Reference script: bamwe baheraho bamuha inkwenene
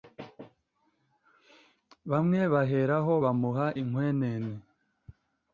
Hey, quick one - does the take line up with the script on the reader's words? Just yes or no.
yes